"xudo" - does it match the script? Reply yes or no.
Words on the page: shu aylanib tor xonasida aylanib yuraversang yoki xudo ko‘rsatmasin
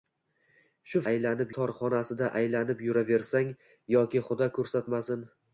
yes